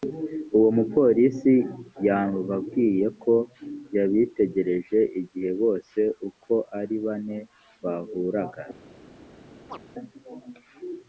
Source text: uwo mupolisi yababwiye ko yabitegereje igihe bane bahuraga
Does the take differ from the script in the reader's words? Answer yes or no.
yes